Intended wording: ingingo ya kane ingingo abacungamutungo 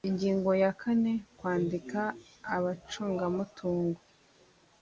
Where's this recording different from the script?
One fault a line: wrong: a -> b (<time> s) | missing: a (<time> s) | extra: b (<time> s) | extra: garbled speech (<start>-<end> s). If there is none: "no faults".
wrong: ingingo -> kwandika (1.4 s)